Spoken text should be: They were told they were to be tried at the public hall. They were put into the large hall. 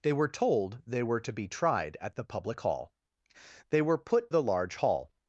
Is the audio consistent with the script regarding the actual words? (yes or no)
no